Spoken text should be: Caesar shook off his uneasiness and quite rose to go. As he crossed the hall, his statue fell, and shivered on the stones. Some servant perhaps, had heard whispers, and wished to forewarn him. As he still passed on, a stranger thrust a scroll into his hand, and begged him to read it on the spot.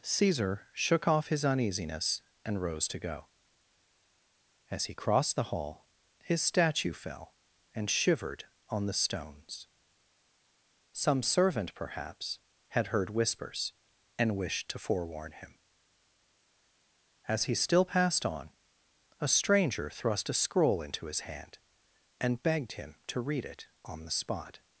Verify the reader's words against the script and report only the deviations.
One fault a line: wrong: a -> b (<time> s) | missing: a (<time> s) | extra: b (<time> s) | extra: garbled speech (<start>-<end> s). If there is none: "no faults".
missing: quite (2.6 s)